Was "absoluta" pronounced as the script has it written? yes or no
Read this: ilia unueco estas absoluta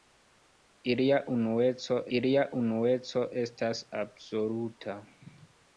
yes